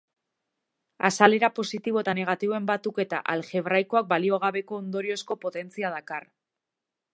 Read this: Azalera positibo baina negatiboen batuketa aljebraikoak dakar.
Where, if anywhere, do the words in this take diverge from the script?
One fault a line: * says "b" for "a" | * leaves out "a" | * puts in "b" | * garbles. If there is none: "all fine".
* says "eta" for "baina"
* puts in "baliogabeko ondoriozko potentzia"